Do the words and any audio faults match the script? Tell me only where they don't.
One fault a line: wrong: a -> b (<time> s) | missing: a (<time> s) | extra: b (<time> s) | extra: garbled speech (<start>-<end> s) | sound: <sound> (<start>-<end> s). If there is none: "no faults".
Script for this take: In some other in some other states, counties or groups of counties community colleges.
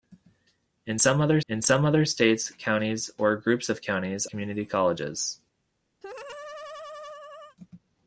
sound: laugh (6.0-7.6 s)